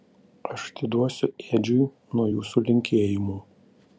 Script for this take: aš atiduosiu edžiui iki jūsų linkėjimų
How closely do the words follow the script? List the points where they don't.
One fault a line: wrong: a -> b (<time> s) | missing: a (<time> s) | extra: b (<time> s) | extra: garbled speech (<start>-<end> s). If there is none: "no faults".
wrong: iki -> nuo (2.1 s)